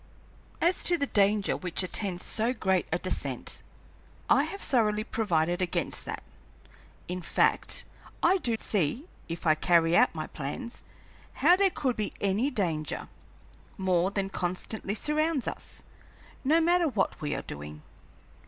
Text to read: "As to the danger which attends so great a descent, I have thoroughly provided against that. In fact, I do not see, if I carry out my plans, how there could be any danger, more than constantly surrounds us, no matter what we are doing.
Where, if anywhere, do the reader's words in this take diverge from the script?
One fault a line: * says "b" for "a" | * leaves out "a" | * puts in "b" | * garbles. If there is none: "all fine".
* leaves out "not"